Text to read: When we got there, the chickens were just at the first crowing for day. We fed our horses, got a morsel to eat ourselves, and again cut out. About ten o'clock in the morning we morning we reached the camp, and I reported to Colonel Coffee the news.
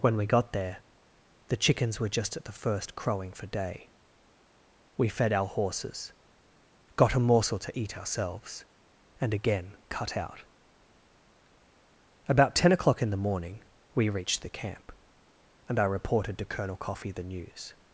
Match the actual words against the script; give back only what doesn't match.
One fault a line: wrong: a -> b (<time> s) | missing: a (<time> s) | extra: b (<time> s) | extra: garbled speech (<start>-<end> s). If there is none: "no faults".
missing: morning we (14.1 s)